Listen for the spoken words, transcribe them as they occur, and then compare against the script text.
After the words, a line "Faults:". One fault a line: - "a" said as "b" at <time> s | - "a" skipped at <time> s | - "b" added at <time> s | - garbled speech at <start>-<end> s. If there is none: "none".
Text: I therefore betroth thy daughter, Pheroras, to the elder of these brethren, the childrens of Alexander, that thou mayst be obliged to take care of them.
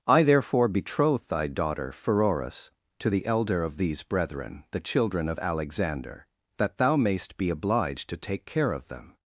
I therefore betroth thy daughter, Pheroras, to the elder of these brethren, the children of Alexander, that thou mayst be obliged to take care of them.
Faults:
- "childrens" said as "children" at 4.8 s